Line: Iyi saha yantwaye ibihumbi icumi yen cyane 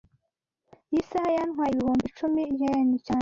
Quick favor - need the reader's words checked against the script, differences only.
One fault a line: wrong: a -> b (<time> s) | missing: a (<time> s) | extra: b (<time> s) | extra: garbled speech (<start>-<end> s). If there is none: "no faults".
no faults